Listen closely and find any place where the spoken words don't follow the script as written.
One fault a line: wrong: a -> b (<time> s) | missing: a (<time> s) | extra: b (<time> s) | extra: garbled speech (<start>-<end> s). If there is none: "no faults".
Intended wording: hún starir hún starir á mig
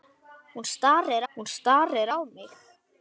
no faults